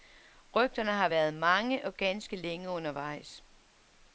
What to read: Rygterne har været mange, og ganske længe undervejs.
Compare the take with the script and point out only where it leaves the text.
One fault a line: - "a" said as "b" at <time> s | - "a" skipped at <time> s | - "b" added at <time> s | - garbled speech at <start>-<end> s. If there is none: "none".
none